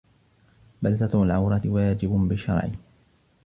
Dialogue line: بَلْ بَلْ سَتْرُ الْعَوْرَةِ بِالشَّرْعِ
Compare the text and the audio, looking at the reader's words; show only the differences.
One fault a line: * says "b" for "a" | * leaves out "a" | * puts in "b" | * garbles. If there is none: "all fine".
* leaves out "بَلْ"
* puts in "وَاجِبٌ"